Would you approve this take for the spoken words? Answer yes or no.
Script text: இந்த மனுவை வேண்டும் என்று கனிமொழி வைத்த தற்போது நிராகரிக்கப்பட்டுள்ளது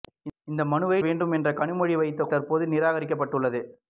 yes